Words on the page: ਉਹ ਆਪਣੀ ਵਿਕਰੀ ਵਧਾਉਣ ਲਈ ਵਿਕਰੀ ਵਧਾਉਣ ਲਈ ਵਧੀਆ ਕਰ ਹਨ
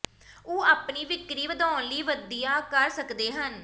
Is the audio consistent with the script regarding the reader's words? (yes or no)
no